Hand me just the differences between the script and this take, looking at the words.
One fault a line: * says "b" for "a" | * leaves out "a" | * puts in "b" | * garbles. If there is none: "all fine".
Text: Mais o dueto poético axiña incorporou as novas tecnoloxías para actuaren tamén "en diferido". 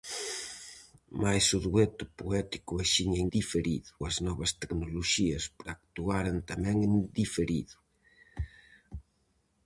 * says "diferido" for "incorporou"